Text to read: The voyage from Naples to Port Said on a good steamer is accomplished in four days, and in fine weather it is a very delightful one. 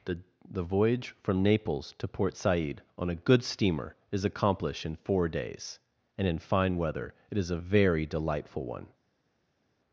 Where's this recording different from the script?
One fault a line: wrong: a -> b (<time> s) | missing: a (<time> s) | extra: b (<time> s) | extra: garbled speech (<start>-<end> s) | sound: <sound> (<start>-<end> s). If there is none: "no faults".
extra: the (0.5 s)